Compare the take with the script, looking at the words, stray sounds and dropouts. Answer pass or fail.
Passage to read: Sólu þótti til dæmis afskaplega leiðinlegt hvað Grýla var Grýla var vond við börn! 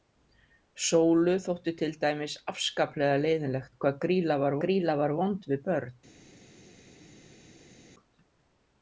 pass